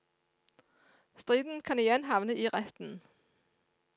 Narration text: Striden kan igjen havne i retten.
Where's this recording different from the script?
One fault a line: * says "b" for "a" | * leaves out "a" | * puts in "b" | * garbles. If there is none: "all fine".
all fine